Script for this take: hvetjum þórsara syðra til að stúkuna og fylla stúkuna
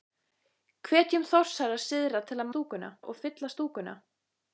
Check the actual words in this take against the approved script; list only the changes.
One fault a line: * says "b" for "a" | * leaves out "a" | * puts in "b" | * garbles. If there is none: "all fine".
all fine